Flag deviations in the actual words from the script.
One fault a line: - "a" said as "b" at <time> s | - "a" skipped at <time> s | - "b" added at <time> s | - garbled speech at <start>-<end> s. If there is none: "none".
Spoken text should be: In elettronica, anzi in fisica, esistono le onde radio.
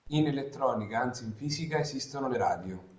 - "onde" skipped at 2.4 s